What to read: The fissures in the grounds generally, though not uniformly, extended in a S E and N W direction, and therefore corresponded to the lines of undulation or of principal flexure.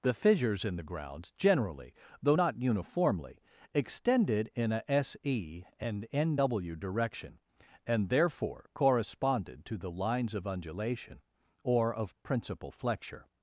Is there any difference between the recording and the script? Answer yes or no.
no